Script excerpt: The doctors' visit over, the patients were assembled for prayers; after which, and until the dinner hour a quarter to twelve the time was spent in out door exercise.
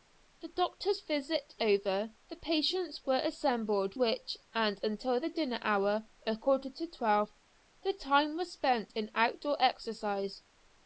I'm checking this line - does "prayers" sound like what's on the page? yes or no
no